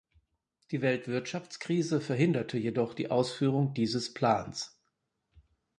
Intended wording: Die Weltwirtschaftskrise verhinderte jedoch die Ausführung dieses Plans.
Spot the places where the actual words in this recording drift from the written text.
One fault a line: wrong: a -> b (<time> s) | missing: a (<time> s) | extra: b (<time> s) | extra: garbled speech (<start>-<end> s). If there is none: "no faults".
no faults